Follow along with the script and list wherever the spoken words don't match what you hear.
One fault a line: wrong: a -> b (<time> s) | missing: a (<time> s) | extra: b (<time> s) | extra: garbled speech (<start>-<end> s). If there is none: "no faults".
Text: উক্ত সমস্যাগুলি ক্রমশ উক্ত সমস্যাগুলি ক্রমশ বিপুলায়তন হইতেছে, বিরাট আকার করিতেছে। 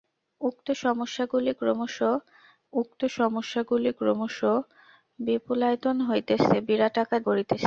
no faults